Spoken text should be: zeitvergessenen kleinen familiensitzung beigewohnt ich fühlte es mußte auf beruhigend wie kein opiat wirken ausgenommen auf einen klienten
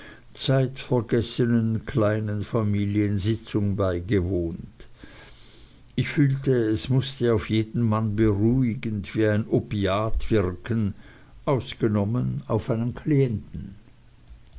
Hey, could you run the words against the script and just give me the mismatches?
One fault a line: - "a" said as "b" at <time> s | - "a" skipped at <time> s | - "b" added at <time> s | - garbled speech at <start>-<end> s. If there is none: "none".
- "jeden mann" added at 7.5 s
- "kein" said as "ein" at 9.3 s